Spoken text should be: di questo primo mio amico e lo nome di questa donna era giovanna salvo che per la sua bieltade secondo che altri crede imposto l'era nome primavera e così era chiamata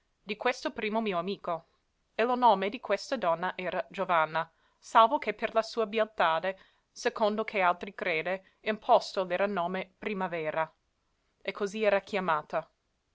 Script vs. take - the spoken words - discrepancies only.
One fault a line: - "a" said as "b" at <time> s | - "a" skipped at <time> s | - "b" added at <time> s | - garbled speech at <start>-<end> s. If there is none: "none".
none